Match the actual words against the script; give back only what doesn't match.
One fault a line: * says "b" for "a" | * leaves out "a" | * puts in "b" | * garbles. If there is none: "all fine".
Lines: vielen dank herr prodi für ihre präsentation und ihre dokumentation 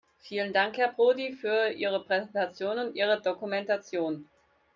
all fine